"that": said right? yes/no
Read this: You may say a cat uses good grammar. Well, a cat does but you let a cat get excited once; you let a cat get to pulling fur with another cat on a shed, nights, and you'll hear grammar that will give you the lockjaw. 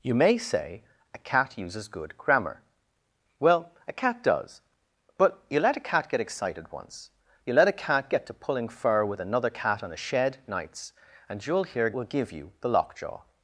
no